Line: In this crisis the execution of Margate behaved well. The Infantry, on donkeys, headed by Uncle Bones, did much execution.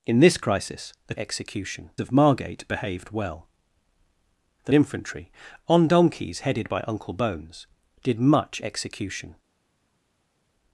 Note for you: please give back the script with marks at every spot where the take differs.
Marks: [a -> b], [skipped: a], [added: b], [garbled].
In this crisis the execution of Margate behaved well. The Infantry, on donkeys, headed by Uncle Bones, did much execution.